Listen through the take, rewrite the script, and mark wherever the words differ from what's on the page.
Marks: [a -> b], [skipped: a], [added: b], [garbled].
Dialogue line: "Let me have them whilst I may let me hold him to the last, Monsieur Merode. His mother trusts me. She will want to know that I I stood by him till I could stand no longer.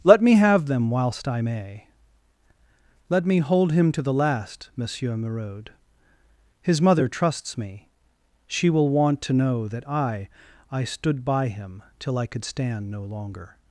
"Let me have them whilst I may let me hold him to the last, Monsieur Merode. His mother trusts me. She will want to know that I I stood by him till I could stand no longer.